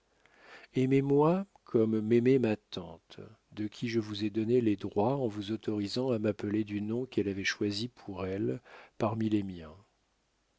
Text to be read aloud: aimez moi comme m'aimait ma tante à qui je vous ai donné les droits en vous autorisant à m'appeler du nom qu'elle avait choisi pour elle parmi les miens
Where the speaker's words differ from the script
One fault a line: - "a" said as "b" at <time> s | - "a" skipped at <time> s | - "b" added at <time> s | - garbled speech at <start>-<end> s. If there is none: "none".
- "à" said as "de" at 3.5 s